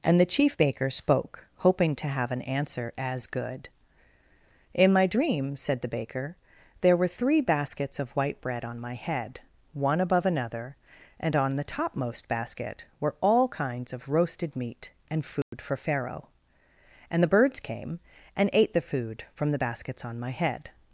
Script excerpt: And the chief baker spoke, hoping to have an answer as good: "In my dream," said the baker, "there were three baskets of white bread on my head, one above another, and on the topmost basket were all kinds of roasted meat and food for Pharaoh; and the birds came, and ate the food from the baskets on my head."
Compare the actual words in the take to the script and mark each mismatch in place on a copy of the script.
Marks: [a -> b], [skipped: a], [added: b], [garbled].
And the chief baker spoke, hoping to have an answer as good: "In my dream," said the baker, "there were three baskets of white bread on my head, one above another, and on the topmost basket were all kinds of roasted meat and food for Pharaoh; and the birds came, and ate the food from the baskets on my head."